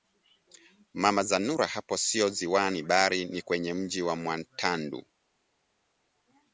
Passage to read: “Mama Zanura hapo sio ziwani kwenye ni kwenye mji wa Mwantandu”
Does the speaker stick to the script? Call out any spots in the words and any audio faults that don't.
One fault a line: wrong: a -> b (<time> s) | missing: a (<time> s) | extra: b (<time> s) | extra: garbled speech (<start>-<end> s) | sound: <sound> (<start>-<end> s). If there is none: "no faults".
wrong: kwenye -> bali (2.8 s)